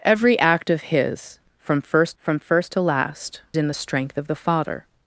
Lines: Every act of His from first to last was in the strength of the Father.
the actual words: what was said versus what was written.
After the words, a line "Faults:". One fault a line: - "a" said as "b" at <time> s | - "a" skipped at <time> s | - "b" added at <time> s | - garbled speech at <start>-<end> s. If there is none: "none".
Every act of His from first from first to last in the strength of the Father.
Faults:
- "from first" added at 2.2 s
- "was" skipped at 3.4 s